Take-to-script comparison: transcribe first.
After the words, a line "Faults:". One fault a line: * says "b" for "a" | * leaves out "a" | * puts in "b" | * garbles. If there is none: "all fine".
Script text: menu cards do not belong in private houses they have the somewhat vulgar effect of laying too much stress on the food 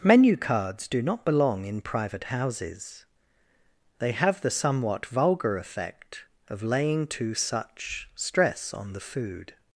menu cards do not belong in private houses they have the somewhat vulgar effect of laying too such stress on the food
Faults:
* says "such" for "much"